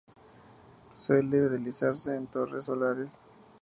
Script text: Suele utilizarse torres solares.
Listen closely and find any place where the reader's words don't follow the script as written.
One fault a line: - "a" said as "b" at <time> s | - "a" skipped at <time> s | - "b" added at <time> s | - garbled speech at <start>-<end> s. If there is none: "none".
- "en" added at 2.1 s